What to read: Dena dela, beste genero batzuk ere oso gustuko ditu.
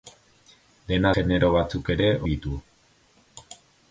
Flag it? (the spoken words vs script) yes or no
yes